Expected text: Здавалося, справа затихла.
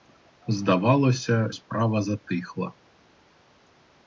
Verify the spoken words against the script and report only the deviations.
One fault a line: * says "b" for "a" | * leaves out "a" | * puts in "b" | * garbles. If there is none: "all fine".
all fine